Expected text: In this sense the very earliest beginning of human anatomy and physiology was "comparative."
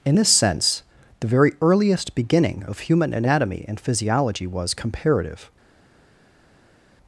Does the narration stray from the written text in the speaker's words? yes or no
no